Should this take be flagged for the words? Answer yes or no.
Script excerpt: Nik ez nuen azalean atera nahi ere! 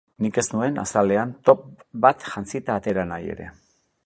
yes